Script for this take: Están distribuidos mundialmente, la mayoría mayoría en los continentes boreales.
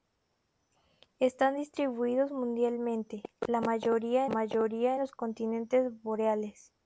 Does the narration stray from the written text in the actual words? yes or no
no